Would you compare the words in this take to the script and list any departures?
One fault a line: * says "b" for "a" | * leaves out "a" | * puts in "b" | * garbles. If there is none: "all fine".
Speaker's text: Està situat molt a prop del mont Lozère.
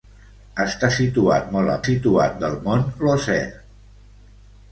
* says "situat" for "prop"